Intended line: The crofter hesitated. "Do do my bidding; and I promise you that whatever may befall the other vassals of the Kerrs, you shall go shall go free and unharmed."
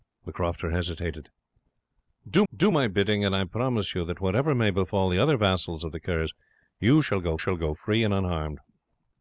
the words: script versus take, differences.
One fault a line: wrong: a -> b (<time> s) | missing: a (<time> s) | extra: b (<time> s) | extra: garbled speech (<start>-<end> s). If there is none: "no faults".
no faults